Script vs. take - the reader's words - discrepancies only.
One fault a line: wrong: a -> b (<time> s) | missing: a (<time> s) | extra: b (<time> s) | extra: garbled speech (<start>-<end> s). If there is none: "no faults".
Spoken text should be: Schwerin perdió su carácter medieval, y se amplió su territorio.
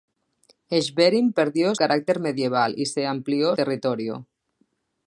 missing: su (1.8 s)
missing: su (3.5 s)